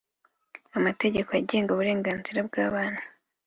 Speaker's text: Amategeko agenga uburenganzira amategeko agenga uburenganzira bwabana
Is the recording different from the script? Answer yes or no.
yes